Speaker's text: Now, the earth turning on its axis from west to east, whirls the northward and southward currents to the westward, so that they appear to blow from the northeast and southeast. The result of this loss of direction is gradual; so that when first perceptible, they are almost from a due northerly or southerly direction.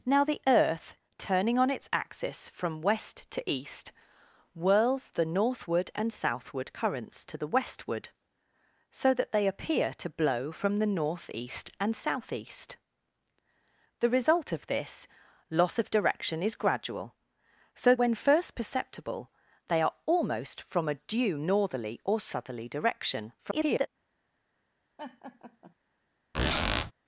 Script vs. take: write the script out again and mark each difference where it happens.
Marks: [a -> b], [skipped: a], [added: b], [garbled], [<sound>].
Now, the earth turning on its axis from west to east, whirls the northward and southward currents to the westward, so that they appear to blow from the northeast and southeast. The result of this loss of direction is gradual; so [skipped: that] when first perceptible, they are almost from a due northerly or southerly direction. [garbled] [laugh] [squeak]